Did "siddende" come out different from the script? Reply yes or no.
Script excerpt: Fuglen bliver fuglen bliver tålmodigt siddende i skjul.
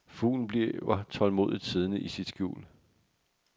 no